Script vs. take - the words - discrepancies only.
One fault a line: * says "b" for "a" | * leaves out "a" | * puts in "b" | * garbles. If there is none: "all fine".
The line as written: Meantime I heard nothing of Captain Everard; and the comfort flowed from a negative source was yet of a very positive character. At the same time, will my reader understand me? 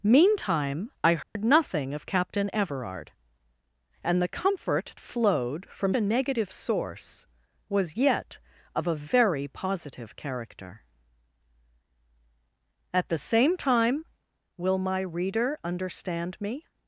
all fine